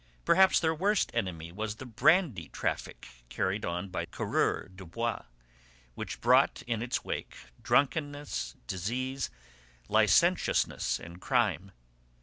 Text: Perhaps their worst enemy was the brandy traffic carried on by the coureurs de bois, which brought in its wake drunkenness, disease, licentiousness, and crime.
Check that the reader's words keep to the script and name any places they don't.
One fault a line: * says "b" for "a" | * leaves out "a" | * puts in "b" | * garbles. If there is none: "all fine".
* leaves out "the"